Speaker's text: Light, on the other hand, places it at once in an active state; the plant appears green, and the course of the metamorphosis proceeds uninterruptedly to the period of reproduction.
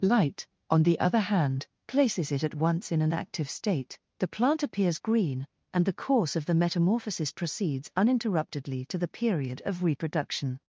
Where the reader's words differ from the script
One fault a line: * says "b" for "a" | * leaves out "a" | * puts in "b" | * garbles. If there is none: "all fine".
all fine